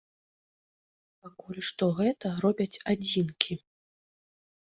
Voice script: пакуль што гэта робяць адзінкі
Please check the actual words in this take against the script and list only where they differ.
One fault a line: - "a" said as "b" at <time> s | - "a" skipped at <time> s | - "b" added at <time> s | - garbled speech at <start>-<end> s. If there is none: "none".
none